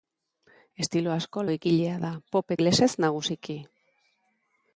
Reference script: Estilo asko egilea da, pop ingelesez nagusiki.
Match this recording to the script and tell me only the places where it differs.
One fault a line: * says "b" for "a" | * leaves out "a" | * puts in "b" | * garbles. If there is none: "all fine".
all fine